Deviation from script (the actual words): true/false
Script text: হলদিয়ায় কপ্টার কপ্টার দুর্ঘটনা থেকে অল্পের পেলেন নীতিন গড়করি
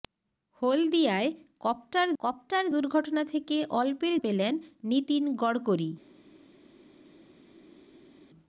false